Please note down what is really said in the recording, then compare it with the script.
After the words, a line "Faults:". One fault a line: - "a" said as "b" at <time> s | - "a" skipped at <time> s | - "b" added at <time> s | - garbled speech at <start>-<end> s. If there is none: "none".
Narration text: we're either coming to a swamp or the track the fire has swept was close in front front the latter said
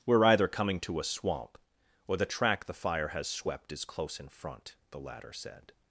we're either coming to a swamp or the track the fire has swept is close in front the latter said
Faults:
- "was" said as "is" at 3.7 s
- "front" skipped at 4.8 s